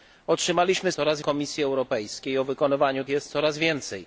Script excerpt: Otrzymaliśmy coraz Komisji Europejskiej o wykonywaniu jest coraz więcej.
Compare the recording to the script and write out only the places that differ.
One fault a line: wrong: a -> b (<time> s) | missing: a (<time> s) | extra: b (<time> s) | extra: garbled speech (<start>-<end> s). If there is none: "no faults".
no faults